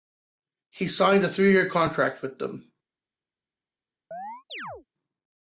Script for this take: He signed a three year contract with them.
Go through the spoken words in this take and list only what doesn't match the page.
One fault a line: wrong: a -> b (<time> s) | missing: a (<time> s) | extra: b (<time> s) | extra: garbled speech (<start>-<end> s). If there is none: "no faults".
no faults